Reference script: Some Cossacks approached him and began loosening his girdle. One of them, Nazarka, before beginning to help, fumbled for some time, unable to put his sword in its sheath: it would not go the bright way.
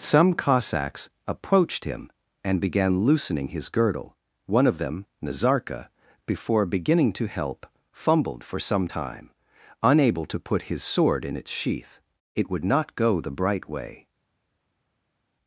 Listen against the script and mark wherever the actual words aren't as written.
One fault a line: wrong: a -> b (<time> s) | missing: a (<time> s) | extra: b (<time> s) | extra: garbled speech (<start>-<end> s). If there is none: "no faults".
no faults